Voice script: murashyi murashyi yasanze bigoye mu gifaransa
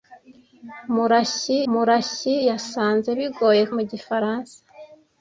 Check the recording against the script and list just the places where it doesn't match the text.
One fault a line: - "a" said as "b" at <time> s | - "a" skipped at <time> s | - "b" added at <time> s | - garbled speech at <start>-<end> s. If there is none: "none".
none